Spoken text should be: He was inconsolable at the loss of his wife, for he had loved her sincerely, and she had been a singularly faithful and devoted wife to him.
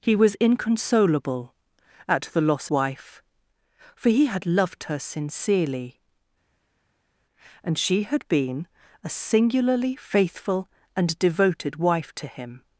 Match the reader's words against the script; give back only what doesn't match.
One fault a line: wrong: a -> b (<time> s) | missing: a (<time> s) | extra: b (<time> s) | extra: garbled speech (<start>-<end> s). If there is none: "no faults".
missing: of his (2.7 s)